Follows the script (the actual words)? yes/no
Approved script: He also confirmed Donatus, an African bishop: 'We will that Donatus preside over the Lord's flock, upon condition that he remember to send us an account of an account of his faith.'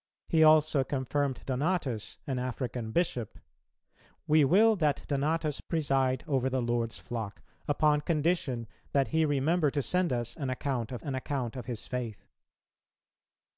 yes